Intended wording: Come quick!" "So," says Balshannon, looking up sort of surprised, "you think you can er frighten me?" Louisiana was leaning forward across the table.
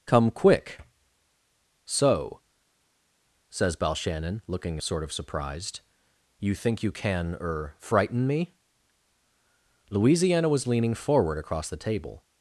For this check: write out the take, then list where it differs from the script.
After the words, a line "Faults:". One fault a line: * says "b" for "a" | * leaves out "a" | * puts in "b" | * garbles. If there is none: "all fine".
Come quick!" "So," says Balshannon, looking sort of surprised, "you think you can er frighten me?" Louisiana was leaning forward across the table.
Faults:
* leaves out "up"